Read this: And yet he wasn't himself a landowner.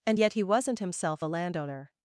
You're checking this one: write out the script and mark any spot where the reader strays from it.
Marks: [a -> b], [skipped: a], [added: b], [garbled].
And yet he wasn't himself a landowner.